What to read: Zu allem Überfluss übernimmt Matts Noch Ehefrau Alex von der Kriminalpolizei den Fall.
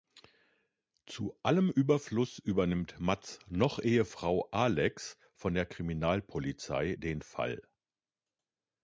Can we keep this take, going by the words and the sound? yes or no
yes